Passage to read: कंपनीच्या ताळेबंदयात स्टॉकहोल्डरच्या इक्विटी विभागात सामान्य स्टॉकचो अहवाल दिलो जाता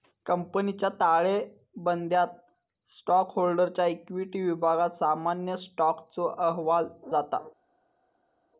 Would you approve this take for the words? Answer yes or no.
no